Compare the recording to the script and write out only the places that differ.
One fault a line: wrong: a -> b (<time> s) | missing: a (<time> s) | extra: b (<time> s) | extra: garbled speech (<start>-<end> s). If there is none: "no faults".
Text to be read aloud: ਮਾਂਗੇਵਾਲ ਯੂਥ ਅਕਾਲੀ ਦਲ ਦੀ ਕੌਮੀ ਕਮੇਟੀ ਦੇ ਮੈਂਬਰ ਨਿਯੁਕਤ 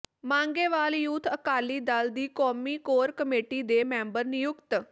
extra: ਕੋਰ (2.8 s)